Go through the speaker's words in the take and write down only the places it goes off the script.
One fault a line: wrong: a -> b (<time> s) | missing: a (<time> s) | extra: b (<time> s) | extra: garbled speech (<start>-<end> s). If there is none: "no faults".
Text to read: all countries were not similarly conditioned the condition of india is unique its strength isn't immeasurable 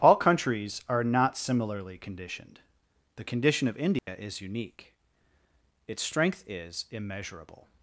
wrong: were -> are (0.9 s)
wrong: isn't -> is (6.5 s)